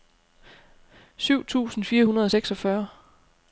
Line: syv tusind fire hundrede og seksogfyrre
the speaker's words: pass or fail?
pass